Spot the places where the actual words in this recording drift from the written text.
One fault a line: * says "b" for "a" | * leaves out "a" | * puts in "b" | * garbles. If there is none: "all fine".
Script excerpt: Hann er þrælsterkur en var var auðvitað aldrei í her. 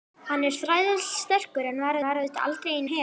all fine